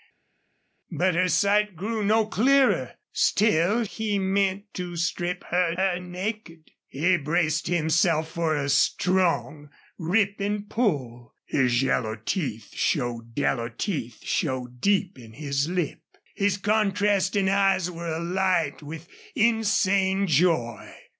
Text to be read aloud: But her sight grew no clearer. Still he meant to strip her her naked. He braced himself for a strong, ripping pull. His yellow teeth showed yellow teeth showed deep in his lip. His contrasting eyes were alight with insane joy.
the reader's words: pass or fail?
pass